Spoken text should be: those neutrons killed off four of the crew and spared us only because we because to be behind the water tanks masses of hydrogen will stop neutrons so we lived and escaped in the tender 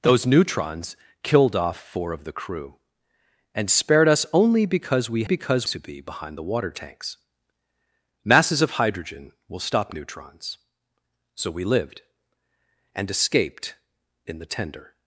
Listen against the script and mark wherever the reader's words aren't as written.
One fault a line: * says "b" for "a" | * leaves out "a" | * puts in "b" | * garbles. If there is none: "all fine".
all fine